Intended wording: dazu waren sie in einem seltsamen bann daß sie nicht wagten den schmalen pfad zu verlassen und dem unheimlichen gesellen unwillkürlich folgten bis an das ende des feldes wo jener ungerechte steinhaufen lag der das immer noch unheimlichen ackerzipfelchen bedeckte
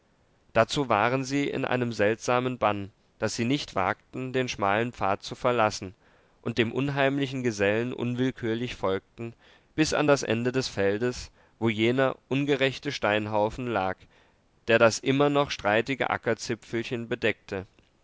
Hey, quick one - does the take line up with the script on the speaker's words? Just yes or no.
no